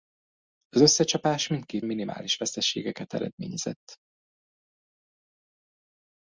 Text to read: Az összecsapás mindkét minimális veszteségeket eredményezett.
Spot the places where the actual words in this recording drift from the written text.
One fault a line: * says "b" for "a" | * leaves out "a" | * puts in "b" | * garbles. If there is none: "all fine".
all fine